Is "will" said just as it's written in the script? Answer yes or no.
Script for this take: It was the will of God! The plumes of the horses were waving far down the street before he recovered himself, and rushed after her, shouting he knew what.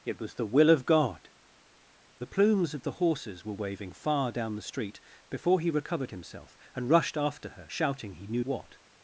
yes